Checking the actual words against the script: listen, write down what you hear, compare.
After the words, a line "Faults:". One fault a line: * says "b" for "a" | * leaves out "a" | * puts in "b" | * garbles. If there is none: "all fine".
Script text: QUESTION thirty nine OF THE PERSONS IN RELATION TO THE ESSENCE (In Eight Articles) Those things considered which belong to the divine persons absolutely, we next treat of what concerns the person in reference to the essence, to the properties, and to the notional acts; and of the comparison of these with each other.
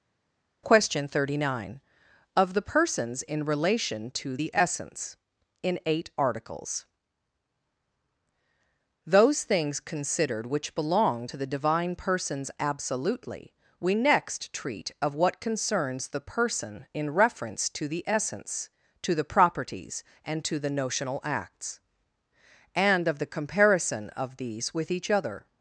QUESTION thirty nine OF THE PERSONS IN RELATION TO THE ESSENCE (In Eight Articles) Those things considered which belong to the divine persons absolutely, we next treat of what concerns the person in reference to the essence, to the properties, and to the notional acts; and of the comparison of these with each other.
Faults:
all fine